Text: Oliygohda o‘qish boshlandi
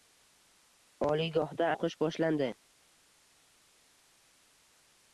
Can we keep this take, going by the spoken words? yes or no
yes